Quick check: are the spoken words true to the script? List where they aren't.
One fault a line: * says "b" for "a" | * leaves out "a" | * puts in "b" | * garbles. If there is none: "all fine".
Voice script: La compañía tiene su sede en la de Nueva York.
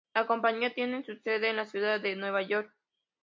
* puts in "ciudad"